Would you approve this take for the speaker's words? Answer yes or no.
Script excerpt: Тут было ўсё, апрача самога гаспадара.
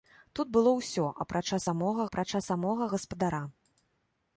no